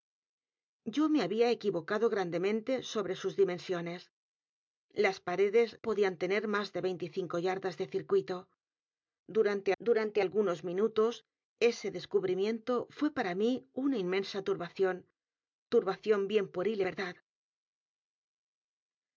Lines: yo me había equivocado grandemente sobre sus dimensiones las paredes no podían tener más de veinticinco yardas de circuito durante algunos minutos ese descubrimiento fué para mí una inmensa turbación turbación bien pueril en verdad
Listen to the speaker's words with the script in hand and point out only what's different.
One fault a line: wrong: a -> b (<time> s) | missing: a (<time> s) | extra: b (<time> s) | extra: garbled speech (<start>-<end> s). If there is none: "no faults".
missing: no (5.8 s)
extra: durante (9.8 s)
missing: en (16.8 s)